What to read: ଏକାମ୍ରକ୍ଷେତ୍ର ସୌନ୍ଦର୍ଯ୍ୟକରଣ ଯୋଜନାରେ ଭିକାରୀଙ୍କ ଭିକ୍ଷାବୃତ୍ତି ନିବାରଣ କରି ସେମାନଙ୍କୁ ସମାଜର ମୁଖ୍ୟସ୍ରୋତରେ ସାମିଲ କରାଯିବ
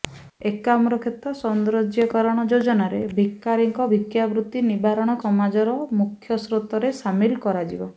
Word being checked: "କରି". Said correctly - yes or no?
no